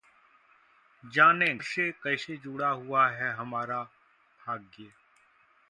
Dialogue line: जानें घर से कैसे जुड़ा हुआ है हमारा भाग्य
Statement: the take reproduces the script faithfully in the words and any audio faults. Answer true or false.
false